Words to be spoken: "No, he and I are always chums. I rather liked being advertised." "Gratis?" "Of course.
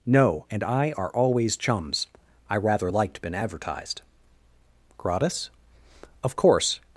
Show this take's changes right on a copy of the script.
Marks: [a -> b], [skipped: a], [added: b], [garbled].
"No, [skipped: he] and I are always chums. I rather liked [being -> been] advertised." "Gratis?" "Of course.